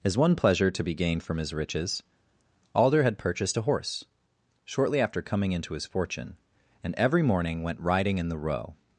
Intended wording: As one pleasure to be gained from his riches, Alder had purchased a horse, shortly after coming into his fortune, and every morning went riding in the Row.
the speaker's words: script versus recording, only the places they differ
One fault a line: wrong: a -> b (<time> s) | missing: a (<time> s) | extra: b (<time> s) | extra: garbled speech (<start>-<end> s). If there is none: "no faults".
no faults